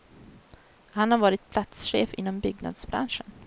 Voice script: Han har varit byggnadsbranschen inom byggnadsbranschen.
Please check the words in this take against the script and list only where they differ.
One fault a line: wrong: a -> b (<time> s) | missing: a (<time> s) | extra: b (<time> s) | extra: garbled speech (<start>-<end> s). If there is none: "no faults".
wrong: byggnadsbranschen -> platschef (1.5 s)